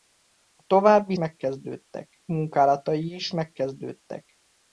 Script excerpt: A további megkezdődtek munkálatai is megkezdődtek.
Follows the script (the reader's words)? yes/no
yes